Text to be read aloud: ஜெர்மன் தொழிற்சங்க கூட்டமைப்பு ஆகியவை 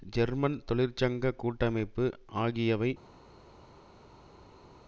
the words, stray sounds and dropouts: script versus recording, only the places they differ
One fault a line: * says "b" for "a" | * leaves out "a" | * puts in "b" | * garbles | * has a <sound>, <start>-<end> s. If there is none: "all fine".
all fine